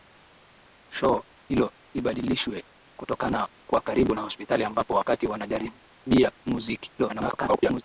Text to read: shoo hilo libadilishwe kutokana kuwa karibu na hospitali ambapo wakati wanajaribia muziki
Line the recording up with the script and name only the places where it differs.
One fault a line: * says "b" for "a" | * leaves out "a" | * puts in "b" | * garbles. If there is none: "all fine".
* garbles